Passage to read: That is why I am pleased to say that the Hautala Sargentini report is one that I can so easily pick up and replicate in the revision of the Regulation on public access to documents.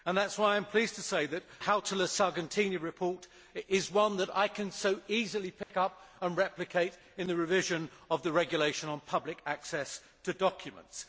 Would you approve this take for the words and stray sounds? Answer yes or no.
no